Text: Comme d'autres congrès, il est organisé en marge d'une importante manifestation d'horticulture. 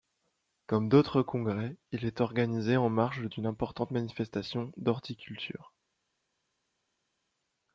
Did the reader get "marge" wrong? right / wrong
right